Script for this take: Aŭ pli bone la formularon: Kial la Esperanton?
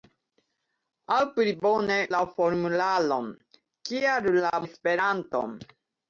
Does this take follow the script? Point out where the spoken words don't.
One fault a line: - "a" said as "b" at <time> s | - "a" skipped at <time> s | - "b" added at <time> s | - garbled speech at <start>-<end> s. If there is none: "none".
none